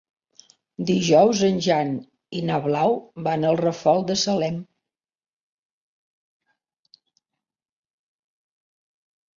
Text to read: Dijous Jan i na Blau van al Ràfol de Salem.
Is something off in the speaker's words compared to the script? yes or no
yes